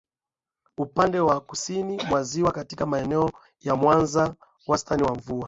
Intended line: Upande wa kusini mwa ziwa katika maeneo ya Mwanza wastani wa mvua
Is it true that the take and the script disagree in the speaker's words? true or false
false